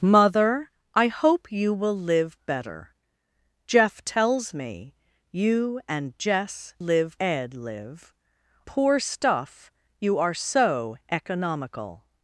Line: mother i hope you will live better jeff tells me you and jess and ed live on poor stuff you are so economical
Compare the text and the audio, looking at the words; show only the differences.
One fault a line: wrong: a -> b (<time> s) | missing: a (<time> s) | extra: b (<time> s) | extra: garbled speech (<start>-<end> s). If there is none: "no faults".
wrong: and -> live (6.8 s)
missing: on (8.1 s)